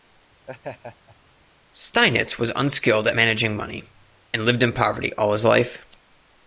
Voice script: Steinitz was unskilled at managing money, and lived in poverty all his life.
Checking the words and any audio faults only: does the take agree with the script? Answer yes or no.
no